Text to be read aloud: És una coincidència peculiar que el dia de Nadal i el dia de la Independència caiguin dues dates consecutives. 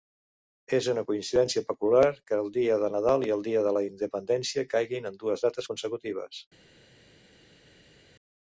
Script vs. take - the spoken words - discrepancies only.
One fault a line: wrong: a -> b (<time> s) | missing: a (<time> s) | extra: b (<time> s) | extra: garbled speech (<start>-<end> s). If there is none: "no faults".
extra: en (5.1 s)